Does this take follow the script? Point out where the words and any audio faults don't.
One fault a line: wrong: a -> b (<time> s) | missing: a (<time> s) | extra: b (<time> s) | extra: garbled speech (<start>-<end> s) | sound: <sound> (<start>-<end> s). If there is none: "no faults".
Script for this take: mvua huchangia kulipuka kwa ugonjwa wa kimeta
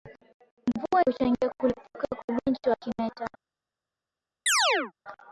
sound: chirp (4.5-4.9 s)